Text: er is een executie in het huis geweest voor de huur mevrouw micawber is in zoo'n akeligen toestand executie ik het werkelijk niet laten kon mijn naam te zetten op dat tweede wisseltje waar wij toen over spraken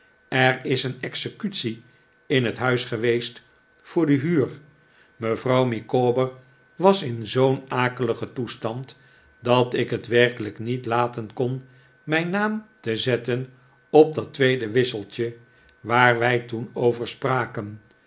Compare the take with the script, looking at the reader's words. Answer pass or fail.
fail